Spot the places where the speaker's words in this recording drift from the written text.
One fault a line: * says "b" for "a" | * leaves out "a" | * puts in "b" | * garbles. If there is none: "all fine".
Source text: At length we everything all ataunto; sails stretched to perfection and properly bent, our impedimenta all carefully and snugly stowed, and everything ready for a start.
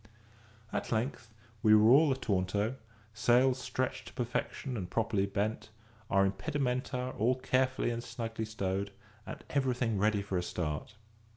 * says "were" for "everything"